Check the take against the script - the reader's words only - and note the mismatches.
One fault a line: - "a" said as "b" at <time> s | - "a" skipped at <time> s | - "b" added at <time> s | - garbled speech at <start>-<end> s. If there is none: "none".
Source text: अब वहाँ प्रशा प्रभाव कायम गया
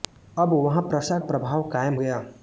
none